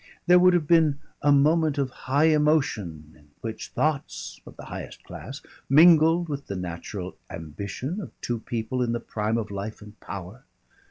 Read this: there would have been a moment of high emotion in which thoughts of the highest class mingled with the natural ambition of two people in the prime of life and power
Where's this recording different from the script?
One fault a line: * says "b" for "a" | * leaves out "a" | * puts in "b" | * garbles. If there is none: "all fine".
all fine